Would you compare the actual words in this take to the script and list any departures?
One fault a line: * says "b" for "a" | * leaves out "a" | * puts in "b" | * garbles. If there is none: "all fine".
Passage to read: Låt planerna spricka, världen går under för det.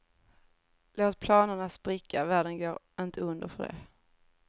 * puts in "inte"